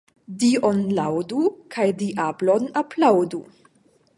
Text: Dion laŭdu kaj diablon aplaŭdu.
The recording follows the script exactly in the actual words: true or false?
true